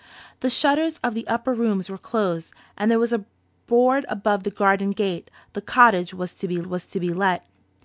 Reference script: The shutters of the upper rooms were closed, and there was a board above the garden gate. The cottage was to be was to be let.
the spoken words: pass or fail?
pass